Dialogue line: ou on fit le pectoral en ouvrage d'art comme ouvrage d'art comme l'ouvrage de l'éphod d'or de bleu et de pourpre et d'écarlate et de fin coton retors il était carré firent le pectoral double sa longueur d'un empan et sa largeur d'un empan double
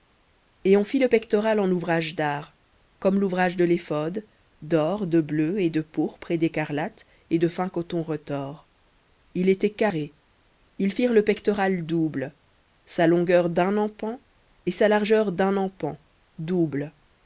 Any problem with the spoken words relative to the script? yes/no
yes